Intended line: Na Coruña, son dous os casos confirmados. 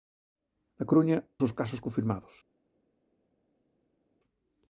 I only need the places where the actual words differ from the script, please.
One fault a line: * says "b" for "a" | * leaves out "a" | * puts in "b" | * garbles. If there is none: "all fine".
* leaves out "son dous"